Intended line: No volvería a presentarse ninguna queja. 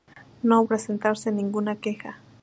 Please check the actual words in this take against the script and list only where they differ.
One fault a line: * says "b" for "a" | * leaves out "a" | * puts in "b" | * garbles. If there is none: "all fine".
* leaves out "volvería"